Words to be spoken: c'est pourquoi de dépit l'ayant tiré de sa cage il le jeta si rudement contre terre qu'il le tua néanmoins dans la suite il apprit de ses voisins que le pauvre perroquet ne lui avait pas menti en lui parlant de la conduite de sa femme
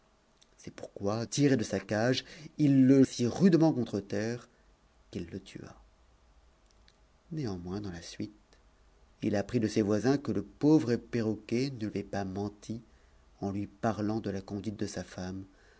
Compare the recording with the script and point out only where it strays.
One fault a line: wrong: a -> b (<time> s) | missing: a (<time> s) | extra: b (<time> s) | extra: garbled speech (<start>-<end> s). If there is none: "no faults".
missing: de dépit l'ayant (1.2 s)
missing: jeta (3.0 s)
missing: lui (11.9 s)